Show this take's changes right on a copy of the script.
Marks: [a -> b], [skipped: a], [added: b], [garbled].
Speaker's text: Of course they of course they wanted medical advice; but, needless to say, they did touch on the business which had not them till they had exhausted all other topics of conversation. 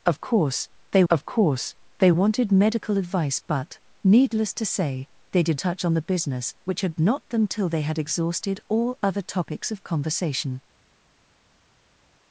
Of course they of course they wanted medical advice; but, needless to say, they did touch on the business which had not them till they had exhausted all other topics of conversation.